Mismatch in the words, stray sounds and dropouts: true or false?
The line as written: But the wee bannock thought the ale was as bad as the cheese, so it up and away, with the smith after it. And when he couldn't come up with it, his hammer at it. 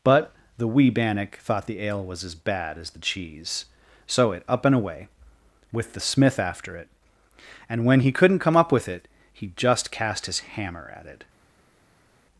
true